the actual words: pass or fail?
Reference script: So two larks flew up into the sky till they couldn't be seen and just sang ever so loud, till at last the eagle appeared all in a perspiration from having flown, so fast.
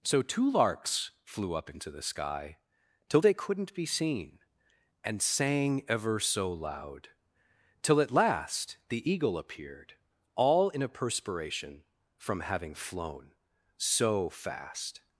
fail